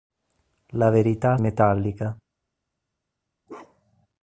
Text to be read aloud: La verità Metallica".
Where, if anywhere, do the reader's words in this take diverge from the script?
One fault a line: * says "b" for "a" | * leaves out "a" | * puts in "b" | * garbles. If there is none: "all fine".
all fine